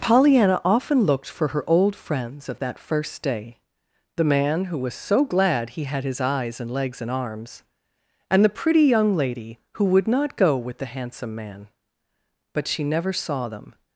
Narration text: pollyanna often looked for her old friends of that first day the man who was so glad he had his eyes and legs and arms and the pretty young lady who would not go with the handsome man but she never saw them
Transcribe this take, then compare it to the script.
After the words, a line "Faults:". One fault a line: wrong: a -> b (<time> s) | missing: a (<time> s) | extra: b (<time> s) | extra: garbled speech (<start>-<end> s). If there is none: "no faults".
pollyanna often looked for her old friends of that first day the man who was so glad he had his eyes and legs and arms and the pretty young lady who would not go with the handsome man but she never saw them
Faults:
no faults